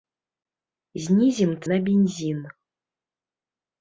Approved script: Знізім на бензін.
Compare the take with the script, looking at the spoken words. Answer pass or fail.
pass